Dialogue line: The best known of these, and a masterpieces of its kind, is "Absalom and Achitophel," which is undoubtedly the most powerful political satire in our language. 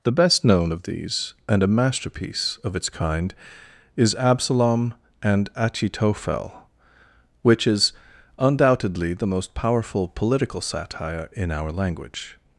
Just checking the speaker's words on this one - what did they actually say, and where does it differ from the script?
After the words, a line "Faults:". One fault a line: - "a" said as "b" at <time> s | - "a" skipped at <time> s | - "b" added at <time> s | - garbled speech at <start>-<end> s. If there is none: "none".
The best known of these, and a masterpiece of its kind, is "Absalom and Achitophel," which is undoubtedly the most powerful political satire in our language.
Faults:
- "masterpieces" said as "masterpiece" at 1.7 s